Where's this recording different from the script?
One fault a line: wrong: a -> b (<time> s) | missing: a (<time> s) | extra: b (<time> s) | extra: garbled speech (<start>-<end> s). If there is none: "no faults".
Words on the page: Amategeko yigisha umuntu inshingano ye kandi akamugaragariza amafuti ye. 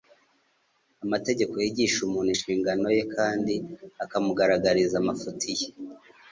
no faults